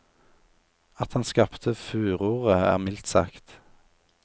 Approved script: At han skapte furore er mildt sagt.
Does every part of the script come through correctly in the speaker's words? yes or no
yes